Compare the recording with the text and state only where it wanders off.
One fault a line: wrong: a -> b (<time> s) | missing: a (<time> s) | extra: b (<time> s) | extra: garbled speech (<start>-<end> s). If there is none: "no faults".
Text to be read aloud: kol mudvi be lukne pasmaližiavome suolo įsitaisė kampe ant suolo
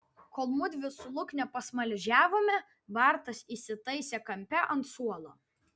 wrong: be -> su (0.9 s)
wrong: suolo -> bartas (3.0 s)